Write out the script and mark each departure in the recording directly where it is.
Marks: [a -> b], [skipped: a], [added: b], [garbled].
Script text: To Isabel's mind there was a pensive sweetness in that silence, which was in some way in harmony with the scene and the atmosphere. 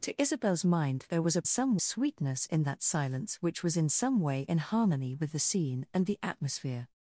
To Isabel's mind there was a [pensive -> some] sweetness in that silence, which was in some way in harmony with the scene and the atmosphere.